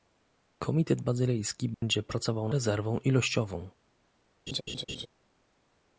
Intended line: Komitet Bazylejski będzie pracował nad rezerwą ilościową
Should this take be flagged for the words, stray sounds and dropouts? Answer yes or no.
yes